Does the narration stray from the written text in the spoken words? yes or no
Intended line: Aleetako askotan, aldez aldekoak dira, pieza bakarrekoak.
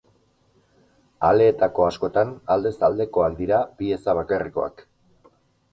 no